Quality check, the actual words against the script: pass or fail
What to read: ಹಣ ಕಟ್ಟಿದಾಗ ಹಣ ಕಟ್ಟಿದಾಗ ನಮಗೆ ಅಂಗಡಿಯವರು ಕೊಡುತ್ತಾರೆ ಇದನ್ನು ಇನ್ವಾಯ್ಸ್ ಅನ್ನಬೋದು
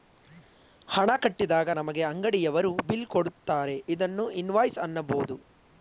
fail